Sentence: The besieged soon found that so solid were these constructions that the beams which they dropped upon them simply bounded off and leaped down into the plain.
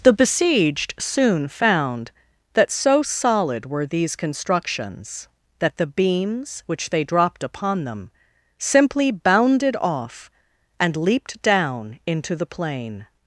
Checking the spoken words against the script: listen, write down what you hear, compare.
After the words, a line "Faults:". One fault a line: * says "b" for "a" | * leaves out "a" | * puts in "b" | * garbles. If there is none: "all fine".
The besieged soon found that so solid were these constructions that the beams which they dropped upon them simply bounded off and leaped down into the plain.
Faults:
all fine